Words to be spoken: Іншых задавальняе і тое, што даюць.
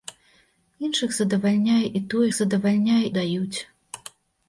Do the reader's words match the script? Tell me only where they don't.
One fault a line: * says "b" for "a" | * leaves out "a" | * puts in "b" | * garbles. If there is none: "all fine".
* says "задавальняе" for "што"